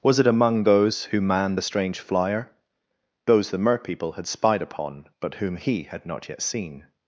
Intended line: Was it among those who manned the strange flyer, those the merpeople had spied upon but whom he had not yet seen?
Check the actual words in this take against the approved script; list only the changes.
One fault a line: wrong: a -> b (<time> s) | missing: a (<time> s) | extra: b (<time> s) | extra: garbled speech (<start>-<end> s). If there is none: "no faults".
no faults